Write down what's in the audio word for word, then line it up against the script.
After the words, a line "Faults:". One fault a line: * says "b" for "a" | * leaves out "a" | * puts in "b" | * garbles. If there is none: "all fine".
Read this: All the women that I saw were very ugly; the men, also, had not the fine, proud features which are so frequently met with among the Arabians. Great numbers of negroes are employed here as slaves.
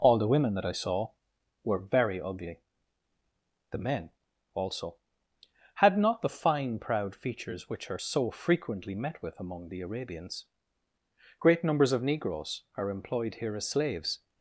All the women that I saw were very ugly; the men, also, had not the fine, proud features which are so frequently met with among the Arabians. Great numbers of negroes are employed here as slaves.
Faults:
all fine